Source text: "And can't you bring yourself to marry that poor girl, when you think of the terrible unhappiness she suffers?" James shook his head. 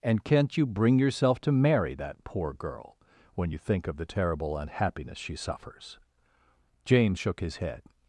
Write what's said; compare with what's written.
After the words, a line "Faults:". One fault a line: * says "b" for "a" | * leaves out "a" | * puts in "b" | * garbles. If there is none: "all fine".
"And can't you bring yourself to marry that poor girl, when you think of the terrible unhappiness she suffers?" James shook his head.
Faults:
all fine